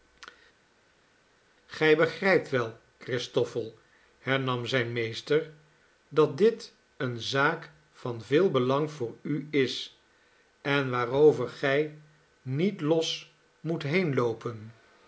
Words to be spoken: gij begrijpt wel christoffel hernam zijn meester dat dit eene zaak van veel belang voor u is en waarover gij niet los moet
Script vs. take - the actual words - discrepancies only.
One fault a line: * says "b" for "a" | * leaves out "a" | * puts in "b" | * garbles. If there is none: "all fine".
all fine